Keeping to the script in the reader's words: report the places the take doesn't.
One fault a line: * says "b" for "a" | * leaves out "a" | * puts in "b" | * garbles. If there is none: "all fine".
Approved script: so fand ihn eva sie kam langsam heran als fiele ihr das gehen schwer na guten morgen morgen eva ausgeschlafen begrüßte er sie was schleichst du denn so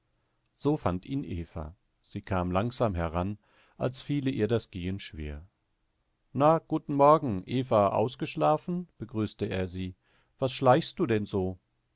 * leaves out "morgen"